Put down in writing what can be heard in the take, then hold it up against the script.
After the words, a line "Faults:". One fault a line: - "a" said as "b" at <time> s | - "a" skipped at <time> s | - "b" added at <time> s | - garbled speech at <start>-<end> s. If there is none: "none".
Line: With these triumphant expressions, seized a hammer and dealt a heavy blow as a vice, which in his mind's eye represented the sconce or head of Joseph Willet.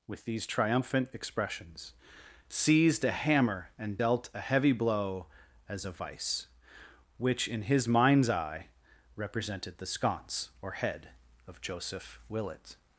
With these triumphant expressions, seized a hammer and dealt a heavy blow as a vice, which in his mind's eye represented the sconce or head of Joseph Willet.
Faults:
none